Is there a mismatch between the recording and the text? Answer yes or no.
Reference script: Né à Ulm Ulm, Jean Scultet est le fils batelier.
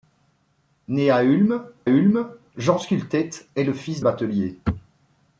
no